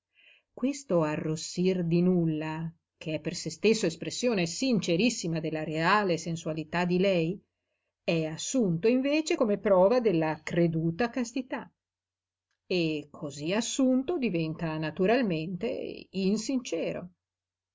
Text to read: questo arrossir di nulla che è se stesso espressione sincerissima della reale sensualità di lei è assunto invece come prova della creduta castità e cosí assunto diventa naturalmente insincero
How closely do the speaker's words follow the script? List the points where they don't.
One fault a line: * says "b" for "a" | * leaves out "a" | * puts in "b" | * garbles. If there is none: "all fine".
* puts in "per"